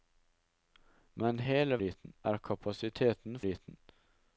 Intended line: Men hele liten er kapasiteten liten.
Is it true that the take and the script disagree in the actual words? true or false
false